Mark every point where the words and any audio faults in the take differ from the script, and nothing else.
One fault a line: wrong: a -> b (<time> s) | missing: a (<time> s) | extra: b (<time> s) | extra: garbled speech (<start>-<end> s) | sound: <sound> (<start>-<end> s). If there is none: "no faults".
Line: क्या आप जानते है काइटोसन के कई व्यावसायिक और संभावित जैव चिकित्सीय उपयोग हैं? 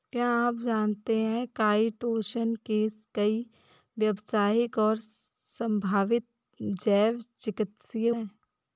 missing: उपयोग (8.1 s)